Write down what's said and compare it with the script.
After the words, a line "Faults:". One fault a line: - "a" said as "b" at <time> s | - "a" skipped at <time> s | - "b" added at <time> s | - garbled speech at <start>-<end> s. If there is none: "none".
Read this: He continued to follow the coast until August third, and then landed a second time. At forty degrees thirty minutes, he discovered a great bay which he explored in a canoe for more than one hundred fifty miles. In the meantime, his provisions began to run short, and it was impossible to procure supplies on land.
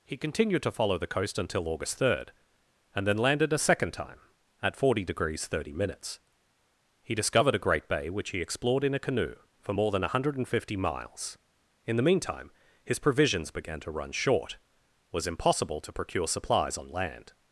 He continued to follow the coast until August third, and then landed a second time. At forty degrees thirty minutes, he discovered a great bay which he explored in a canoe for more than one hundred fifty miles. In the meantime, his provisions began to run short, was impossible to procure supplies on land.
Faults:
- "and it" skipped at 14.6 s